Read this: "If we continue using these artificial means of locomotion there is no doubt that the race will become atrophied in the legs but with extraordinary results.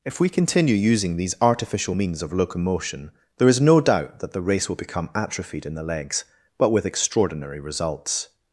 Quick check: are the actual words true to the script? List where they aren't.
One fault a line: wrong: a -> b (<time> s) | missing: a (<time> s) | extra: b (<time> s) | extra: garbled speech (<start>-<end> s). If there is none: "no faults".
no faults